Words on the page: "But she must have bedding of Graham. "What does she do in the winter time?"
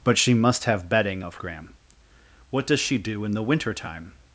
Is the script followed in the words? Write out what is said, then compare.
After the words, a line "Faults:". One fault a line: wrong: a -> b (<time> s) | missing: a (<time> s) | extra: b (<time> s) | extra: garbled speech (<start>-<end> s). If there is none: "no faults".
"But she must have bedding of Graham. "What does she do in the winter time?"
Faults:
no faults